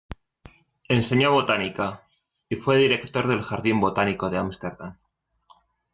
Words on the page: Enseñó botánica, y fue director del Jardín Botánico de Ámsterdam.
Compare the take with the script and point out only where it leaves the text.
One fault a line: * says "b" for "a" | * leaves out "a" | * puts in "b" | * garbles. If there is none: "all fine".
all fine